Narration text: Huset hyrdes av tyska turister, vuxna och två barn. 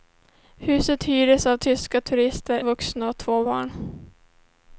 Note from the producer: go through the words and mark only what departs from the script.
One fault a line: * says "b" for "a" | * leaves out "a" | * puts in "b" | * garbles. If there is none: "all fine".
all fine